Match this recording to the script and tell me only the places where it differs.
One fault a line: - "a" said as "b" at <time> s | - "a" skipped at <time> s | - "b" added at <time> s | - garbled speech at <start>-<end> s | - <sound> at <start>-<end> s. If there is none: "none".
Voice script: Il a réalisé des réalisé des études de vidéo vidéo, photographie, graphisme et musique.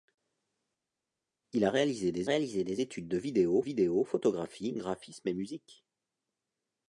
none